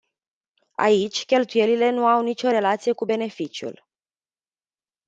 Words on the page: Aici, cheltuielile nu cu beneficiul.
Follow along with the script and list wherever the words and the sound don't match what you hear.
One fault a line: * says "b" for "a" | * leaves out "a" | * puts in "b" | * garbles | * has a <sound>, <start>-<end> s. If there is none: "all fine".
* puts in "au nicio relație"